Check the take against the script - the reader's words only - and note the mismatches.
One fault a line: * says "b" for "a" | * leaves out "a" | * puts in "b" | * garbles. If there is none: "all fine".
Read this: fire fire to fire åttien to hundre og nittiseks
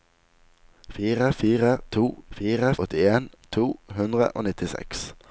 all fine